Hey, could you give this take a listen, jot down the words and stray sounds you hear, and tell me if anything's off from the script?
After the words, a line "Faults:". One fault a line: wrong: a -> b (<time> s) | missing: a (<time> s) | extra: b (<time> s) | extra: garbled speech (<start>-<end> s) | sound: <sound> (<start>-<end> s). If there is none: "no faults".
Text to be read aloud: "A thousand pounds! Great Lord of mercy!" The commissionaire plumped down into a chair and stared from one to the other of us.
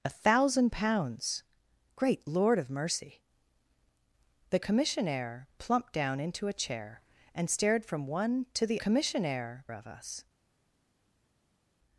"A thousand pounds! Great Lord of mercy!" The commissionaire plumped down into a chair and stared from one to the commissionaire of us.
Faults:
wrong: other -> commissionaire (8.8 s)